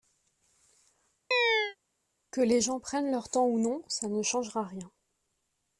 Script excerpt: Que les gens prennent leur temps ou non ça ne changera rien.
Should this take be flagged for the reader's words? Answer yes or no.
no